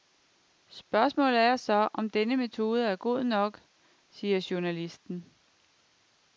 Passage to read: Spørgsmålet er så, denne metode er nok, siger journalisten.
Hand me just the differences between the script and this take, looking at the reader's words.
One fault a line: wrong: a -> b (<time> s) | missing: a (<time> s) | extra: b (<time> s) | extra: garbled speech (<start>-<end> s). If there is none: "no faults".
extra: om (1.9 s)
extra: god (3.0 s)